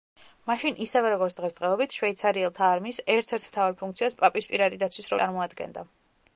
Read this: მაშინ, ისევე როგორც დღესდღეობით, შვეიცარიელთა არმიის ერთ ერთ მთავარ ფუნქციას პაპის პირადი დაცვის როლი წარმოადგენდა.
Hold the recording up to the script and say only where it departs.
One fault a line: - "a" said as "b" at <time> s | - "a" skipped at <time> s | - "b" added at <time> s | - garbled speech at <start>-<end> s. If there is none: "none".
- "როლი" skipped at 5.2 s